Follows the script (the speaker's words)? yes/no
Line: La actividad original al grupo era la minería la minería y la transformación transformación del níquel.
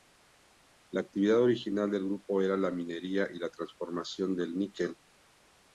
no